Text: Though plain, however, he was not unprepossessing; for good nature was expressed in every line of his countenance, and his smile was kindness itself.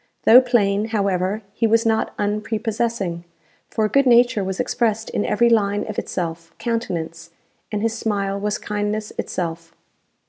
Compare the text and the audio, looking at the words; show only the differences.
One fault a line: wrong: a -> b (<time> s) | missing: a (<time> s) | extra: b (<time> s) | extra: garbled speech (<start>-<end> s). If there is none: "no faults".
wrong: his -> itself (5.9 s)